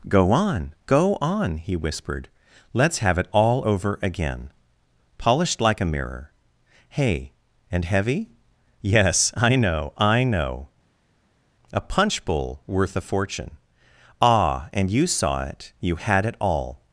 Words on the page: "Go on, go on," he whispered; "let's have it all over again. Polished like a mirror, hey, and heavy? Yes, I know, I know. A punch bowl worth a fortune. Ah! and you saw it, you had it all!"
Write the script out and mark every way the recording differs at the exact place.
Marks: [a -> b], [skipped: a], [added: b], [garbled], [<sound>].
"Go on, go on," he whispered; "let's have it all over again. Polished like a mirror, hey, and heavy? Yes, I know, I know. A punch bowl worth a fortune. Ah! and you saw it, you had it all!"